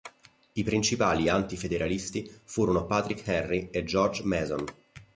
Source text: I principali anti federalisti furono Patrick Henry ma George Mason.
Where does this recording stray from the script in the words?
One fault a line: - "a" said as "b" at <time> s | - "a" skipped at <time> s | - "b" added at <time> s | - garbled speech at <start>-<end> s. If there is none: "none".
- "ma" said as "e" at 3.7 s